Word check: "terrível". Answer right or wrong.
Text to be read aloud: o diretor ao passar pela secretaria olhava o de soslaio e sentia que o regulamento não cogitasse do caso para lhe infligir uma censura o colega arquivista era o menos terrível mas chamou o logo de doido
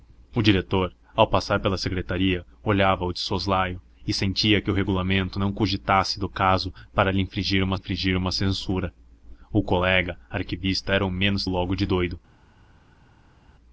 wrong